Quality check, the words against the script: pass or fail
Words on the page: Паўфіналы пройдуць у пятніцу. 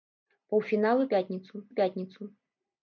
fail